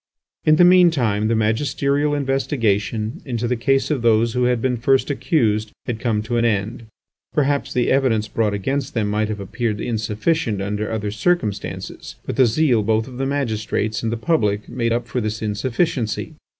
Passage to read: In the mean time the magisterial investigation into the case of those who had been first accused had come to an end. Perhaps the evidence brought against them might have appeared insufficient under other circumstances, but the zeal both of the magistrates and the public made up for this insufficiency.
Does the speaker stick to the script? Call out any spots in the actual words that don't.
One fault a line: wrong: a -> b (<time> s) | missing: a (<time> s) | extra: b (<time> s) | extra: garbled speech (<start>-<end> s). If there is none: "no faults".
no faults